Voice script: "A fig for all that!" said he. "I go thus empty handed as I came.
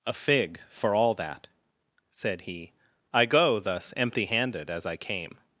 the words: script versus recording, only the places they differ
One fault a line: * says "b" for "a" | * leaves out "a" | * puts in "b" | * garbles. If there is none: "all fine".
all fine